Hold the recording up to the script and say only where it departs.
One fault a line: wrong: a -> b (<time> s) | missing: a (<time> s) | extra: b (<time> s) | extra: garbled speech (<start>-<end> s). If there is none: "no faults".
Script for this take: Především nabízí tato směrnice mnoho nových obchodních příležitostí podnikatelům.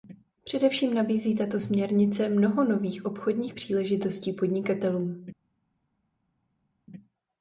no faults